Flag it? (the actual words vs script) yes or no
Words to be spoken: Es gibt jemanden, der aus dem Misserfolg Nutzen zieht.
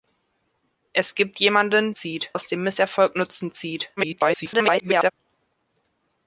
yes